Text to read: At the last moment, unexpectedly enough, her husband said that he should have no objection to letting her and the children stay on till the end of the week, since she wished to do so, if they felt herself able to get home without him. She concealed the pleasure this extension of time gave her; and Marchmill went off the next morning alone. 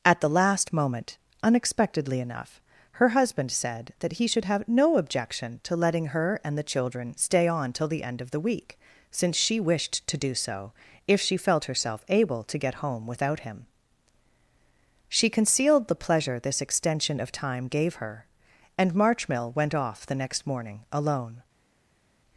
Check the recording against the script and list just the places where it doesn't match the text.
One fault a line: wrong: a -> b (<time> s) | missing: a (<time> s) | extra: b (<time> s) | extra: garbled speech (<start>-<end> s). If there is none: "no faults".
wrong: they -> she (11.2 s)